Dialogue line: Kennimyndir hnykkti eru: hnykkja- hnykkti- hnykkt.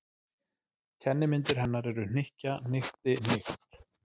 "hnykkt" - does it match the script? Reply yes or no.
yes